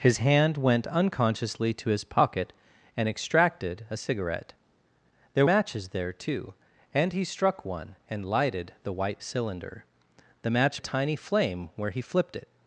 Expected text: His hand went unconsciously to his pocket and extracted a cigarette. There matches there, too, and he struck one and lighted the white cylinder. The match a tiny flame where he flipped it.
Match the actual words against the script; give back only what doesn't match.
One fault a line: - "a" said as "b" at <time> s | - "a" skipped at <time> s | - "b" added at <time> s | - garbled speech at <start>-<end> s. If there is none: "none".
none